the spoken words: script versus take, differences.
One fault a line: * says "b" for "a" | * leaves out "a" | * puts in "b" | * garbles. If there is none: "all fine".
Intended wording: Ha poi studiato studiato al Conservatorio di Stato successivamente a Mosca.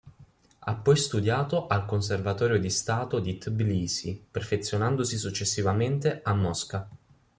* leaves out "studiato"
* puts in "di Tbilisi perfezionandosi"